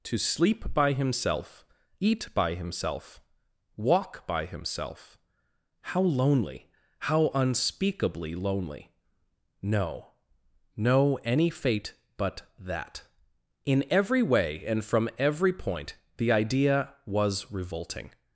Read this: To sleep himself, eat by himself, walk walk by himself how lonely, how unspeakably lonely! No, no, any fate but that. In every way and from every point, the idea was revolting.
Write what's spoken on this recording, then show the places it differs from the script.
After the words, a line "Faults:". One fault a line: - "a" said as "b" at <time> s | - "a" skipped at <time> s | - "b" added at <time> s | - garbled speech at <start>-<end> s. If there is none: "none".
To sleep by himself, eat by himself, walk by himself how lonely, how unspeakably lonely! No, no, any fate but that. In every way and from every point, the idea was revolting.
Faults:
- "by" added at 0.7 s
- "walk" skipped at 4.2 s